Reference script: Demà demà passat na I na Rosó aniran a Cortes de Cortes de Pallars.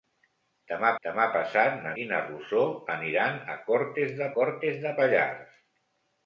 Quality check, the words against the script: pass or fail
pass